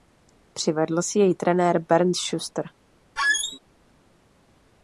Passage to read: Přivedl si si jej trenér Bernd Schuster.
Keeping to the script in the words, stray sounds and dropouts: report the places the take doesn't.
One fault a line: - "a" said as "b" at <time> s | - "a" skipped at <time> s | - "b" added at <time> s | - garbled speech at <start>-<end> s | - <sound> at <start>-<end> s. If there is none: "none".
- "si" skipped at 1.2 s
- squeak at 3.2-3.6 s